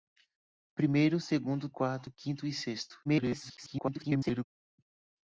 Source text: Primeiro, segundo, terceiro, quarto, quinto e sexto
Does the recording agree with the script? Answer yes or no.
no